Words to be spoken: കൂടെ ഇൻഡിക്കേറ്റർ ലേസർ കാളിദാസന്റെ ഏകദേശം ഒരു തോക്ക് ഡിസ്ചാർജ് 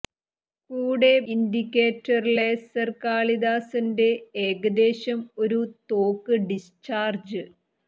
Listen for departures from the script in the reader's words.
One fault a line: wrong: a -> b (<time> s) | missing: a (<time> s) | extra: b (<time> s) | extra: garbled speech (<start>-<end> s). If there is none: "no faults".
no faults